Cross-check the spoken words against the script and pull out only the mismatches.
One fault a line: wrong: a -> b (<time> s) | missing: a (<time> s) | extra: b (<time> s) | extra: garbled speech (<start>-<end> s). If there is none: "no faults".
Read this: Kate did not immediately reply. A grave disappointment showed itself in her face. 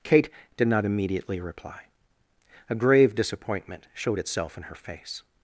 no faults